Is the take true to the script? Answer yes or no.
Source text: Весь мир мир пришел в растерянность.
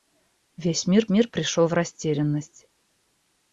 yes